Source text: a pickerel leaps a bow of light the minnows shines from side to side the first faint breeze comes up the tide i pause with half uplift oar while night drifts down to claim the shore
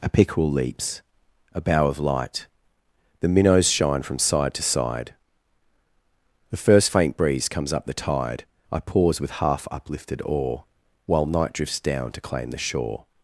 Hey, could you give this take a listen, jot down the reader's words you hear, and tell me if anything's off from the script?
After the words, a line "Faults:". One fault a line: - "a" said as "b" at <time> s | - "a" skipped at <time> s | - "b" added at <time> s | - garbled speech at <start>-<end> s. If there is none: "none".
a pickerel leaps a bow of light the minnows shine from side to side the first faint breeze comes up the tide i pause with half uplifted oar while night drifts down to claim the shore
Faults:
- "shines" said as "shine" at 3.7 s
- "uplift" said as "uplifted" at 9.7 s